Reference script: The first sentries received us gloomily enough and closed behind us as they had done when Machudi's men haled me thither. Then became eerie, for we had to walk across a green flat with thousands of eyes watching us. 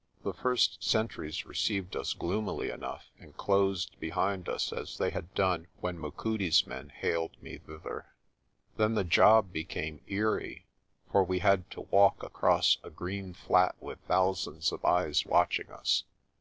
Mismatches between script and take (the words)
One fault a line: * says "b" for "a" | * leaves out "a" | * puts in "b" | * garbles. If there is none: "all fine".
* puts in "the job"